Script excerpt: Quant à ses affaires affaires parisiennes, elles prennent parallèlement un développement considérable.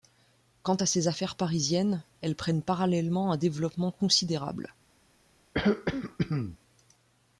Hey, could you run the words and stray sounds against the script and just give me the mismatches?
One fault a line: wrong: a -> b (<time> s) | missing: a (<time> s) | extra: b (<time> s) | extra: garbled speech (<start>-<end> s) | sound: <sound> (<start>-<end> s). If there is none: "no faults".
missing: affaires (1.3 s)
sound: throat clearing (5.5-6.6 s)